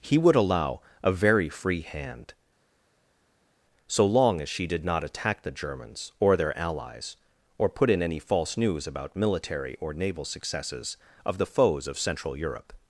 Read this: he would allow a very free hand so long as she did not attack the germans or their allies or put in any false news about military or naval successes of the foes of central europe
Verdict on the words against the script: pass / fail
pass